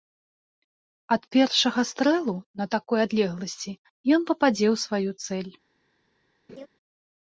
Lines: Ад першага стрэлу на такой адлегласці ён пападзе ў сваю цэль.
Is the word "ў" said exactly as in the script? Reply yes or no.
yes